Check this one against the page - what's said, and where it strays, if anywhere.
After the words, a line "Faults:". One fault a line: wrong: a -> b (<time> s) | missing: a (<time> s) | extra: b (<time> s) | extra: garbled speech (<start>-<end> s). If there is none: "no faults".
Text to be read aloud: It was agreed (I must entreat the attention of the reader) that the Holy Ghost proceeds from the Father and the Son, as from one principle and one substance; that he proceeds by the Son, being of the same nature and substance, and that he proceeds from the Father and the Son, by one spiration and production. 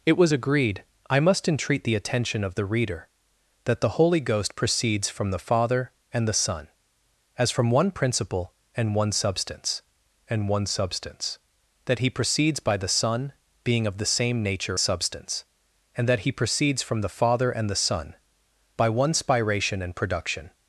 It was agreed (I must entreat the attention of the reader) that the Holy Ghost proceeds from the Father and the Son, as from one principle and one substance and one substance; that he proceeds by the Son, being of the same nature substance, and that he proceeds from the Father and the Son, by one spiration and production.
Faults:
extra: and one substance (10.3 s)
missing: and (14.8 s)